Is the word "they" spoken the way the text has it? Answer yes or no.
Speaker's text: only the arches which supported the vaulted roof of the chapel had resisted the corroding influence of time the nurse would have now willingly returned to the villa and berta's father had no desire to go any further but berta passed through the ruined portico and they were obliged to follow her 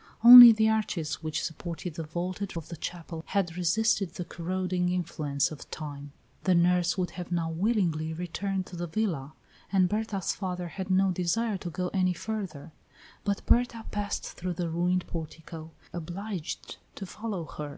no